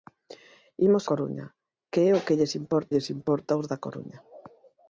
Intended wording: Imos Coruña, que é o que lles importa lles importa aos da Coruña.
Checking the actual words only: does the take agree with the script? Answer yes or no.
yes